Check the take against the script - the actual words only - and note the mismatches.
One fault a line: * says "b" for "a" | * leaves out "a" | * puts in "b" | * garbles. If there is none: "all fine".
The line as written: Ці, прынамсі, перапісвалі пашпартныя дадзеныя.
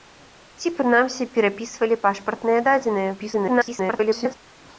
* garbles